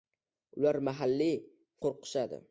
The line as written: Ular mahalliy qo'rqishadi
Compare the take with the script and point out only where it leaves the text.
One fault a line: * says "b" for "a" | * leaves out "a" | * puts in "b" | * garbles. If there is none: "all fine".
all fine